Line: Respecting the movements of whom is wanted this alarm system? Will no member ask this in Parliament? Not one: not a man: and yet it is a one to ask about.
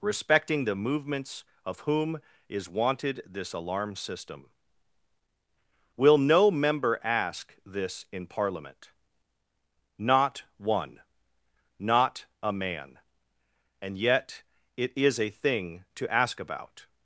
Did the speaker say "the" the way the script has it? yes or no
yes